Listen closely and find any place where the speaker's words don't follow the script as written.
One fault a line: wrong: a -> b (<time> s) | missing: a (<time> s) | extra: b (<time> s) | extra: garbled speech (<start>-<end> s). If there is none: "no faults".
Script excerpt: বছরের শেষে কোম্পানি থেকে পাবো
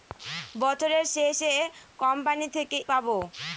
no faults